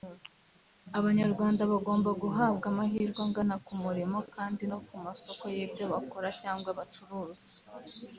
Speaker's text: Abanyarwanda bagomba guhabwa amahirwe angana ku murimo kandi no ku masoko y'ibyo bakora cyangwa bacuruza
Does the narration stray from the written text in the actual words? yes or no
no